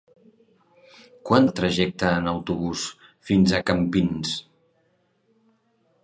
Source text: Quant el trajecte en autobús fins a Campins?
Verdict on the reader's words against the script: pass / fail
pass